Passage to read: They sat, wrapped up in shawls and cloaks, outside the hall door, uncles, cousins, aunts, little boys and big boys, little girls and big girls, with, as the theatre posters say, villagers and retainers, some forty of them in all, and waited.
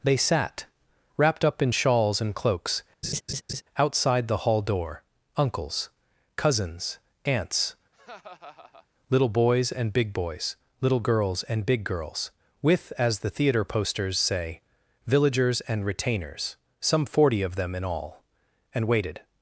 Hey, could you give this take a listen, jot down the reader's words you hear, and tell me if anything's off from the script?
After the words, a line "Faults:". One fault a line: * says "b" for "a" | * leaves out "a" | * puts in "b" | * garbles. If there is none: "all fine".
They sat, wrapped up in shawls and cloaks, outside the hall door, uncles, cousins, aunts, little boys and big boys, little girls and big girls, with, as the theatre posters say, villagers and retainers, some forty of them in all, and waited.
Faults:
all fine